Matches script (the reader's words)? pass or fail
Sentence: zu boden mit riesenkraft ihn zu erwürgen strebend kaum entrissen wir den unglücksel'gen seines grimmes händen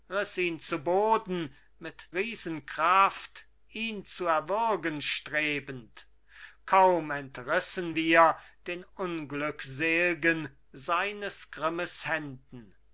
pass